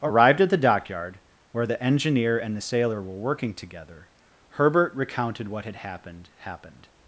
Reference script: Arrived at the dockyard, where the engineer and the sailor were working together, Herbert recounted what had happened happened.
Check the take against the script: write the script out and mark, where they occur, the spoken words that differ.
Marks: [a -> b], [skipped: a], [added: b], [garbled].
Arrived at the dockyard, where the engineer and the sailor were working together, Herbert recounted what had happened happened.